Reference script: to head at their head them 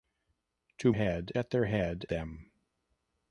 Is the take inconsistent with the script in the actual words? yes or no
no